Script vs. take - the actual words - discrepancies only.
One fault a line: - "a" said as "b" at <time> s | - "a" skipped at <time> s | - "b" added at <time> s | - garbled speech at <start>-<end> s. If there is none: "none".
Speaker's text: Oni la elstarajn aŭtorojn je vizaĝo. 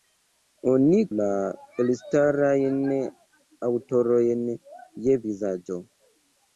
none